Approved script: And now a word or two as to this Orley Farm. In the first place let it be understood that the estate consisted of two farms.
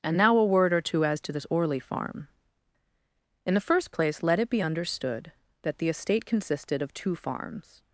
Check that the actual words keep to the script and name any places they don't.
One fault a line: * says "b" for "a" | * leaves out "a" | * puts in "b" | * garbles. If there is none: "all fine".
all fine